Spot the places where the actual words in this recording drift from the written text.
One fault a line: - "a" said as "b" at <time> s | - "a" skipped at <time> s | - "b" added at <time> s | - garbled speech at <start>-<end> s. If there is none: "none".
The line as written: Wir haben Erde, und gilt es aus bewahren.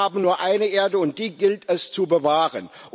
- "nur eine" added at 0.2 s
- "die" added at 1.2 s
- "aus" said as "zu" at 1.9 s